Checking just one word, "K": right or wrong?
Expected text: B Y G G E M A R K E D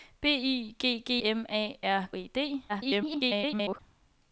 wrong